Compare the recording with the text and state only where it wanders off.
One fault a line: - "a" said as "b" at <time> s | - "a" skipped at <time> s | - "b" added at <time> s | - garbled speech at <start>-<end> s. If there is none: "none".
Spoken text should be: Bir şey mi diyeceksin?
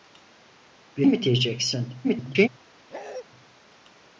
- "şey" skipped at 1.1 s
- garbled speech at 2.0-2.5 s